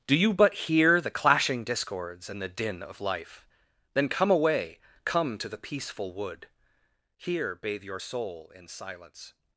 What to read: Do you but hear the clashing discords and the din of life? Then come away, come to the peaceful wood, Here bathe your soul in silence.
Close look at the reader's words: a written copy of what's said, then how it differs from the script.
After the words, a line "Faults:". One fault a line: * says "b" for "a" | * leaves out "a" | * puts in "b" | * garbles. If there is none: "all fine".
Do you but hear the clashing discords and the din of life? Then come away, come to the peaceful wood, Here bathe your soul in silence.
Faults:
all fine